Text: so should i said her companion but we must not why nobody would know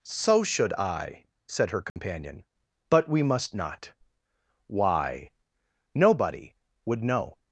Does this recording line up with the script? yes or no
yes